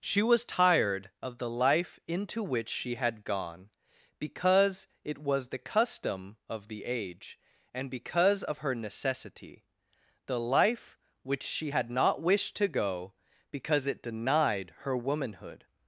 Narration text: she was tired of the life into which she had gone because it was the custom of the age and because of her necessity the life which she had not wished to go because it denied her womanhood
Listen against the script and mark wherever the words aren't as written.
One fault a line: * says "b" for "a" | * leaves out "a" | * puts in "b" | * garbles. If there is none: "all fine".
all fine